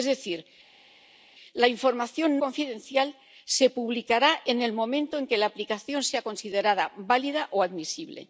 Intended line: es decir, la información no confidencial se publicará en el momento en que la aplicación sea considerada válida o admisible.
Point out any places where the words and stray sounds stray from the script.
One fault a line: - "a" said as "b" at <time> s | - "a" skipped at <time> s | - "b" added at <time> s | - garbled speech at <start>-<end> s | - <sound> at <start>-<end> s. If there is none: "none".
- "no" skipped at 2.4 s